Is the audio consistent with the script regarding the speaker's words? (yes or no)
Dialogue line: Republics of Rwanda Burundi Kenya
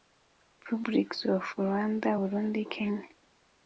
yes